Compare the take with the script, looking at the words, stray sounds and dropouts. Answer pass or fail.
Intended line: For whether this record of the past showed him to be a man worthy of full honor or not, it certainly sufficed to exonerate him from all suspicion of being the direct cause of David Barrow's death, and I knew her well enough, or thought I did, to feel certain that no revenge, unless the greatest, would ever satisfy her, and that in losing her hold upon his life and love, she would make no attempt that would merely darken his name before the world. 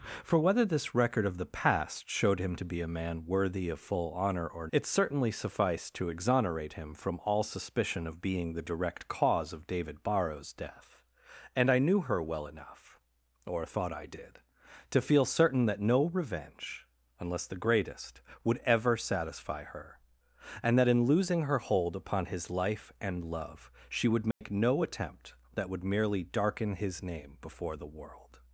fail